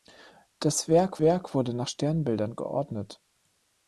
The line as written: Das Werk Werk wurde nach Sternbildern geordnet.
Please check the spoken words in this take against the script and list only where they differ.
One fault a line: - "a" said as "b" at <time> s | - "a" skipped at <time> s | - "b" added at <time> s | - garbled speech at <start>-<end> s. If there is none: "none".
none